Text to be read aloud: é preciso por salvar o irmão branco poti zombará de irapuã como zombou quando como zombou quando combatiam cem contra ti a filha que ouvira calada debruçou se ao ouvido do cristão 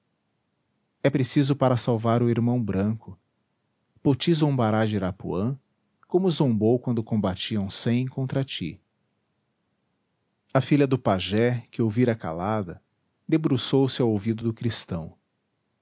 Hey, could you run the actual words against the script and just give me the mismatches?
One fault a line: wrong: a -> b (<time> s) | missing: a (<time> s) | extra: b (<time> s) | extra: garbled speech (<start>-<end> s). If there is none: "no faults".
wrong: por -> para (1.6 s)
missing: como zombou quando (7.0 s)
extra: do pajé (10.9 s)